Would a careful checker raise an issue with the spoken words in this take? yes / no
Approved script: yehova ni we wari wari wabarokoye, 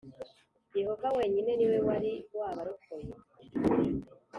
yes